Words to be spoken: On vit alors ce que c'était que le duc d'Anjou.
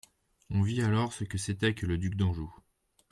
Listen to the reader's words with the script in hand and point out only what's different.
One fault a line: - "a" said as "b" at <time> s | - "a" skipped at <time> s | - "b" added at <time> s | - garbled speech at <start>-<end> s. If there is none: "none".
none